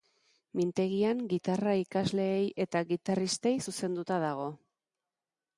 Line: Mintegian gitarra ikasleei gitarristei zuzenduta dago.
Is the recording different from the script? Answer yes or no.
yes